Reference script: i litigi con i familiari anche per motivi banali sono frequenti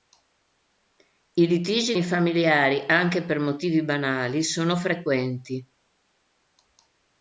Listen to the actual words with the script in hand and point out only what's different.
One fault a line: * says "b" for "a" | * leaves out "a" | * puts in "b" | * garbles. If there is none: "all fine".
* leaves out "con"